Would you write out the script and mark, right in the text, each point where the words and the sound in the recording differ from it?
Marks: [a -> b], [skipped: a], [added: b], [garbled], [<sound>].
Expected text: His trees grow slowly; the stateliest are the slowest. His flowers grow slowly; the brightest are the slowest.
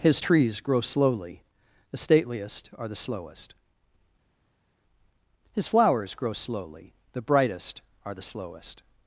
His trees grow slowly; the stateliest are the slowest. His flowers grow slowly; the brightest are the slowest.